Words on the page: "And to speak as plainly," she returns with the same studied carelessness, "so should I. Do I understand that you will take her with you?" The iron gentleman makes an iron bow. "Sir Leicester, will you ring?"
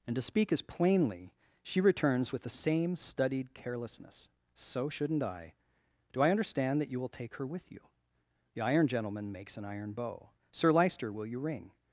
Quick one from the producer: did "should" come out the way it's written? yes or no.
no